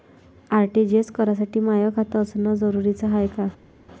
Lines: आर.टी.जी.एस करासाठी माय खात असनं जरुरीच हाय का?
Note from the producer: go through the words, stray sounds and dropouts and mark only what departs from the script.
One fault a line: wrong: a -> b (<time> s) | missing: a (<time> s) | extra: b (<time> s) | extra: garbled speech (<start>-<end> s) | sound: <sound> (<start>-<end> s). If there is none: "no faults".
no faults